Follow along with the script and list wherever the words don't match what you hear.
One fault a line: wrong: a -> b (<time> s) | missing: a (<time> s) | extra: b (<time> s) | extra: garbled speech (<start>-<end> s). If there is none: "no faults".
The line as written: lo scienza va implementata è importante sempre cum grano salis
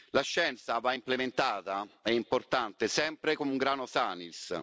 wrong: lo -> la (0.1 s)